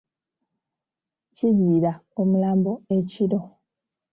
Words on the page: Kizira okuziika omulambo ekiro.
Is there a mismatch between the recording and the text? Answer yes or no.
yes